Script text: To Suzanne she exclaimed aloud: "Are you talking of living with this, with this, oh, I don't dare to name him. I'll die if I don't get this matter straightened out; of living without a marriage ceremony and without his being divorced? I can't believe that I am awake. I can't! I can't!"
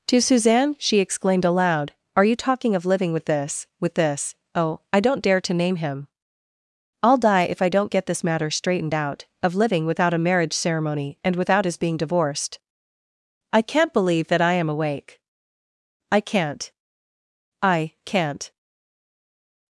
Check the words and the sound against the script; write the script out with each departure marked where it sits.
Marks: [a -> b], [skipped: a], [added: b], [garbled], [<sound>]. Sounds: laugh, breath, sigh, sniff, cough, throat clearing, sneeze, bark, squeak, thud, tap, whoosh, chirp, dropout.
To Suzanne she exclaimed aloud: "Are you talking of living with this, with this, oh, I don't dare to name him. I'll die if I don't get this matter straightened out; of living without a marriage ceremony and without his being divorced? I can't believe that I am awake. I can't! I can't!"